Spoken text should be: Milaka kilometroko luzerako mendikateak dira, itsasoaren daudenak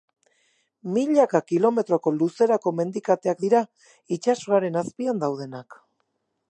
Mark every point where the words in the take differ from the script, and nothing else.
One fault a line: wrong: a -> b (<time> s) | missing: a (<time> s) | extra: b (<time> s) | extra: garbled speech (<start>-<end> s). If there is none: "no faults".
extra: azpian (4.8 s)